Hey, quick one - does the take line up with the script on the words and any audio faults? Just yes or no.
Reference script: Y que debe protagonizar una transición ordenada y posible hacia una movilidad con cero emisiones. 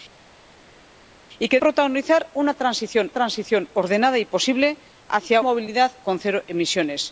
no